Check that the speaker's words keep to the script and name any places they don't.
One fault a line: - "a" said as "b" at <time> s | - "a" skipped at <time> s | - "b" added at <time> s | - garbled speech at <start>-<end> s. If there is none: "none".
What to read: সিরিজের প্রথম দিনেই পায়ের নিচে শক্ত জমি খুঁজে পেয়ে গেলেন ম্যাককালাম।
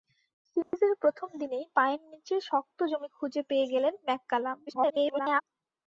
- garbled speech at 4.7-5.4 s